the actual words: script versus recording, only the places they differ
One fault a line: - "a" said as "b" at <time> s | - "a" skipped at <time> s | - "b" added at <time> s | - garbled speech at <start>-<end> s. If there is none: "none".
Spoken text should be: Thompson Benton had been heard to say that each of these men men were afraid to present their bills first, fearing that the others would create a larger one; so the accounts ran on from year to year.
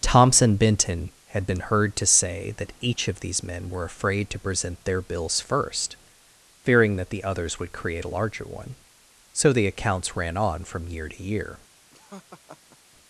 - "men" skipped at 3.7 s